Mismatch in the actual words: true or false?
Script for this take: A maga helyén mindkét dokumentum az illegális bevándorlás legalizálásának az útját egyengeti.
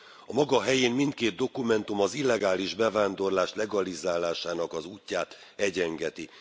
false